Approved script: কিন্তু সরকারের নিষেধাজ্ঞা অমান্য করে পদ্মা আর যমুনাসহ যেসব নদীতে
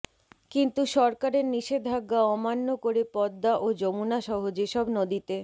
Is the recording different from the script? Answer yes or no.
yes